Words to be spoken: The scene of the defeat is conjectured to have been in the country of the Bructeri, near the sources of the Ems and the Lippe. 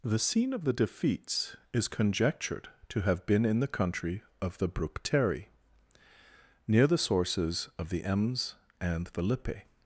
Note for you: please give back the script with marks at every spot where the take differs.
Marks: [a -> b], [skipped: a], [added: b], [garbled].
The scene of the [defeat -> defeats] is conjectured to have been in the country of the Bructeri, near the sources of the Ems and the Lippe.